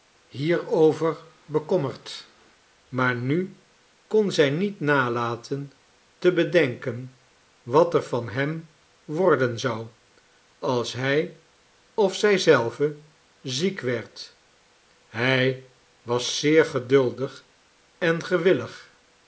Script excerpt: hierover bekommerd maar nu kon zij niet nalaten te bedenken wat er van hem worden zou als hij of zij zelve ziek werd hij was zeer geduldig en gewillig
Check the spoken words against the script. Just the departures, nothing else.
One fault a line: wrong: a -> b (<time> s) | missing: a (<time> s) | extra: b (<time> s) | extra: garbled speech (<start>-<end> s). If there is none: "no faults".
no faults